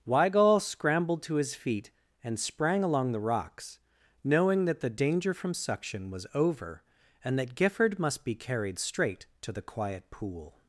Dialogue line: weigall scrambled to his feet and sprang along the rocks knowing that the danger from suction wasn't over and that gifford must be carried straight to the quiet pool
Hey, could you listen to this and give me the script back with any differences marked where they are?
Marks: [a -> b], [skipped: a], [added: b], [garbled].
weigall scrambled to his feet and sprang along the rocks knowing that the danger from suction [wasn't -> was] over and that gifford must be carried straight to the quiet pool